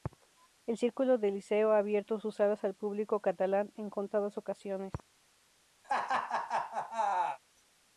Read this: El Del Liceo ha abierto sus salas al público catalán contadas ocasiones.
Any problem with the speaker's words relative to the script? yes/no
yes